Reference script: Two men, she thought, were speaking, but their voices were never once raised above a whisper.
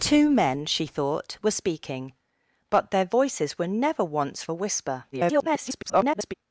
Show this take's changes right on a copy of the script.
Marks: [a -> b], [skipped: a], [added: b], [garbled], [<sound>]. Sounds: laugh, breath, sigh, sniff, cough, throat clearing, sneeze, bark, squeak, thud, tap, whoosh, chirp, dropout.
Two men, she thought, were speaking, but their voices were never once [skipped: raised above] a whisper. [garbled]